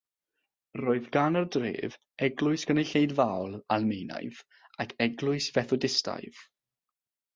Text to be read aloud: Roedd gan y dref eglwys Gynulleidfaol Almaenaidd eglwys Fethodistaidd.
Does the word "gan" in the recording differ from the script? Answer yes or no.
no